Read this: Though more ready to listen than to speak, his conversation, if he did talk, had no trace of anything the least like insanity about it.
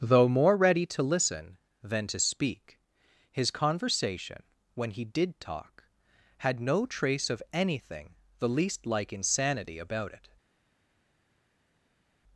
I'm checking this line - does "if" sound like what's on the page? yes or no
no